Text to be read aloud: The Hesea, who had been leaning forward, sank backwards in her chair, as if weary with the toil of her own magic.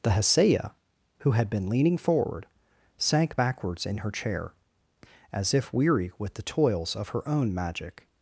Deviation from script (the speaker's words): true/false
true